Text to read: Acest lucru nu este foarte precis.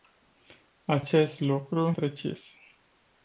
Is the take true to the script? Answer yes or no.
no